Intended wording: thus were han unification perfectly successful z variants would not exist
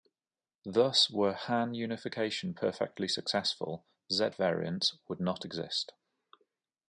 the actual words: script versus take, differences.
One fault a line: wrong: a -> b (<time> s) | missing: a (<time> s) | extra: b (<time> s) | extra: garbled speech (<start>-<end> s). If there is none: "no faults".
no faults